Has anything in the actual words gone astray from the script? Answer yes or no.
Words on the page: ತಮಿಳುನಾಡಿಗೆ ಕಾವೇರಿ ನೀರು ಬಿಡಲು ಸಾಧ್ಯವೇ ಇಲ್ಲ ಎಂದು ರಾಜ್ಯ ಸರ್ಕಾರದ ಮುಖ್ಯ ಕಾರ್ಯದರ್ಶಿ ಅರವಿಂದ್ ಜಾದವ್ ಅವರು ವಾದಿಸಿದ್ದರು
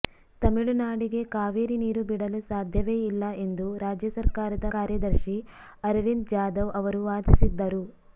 yes